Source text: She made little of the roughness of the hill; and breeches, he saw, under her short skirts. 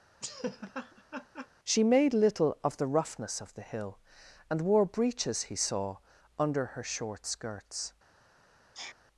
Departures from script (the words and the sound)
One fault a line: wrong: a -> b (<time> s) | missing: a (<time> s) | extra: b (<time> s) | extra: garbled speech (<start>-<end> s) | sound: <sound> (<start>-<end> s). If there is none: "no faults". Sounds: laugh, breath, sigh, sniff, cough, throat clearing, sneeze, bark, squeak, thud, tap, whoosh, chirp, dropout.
sound: laugh (0.2-1.5 s)
extra: wore (4.6 s)
sound: sneeze (8.7-9.0 s)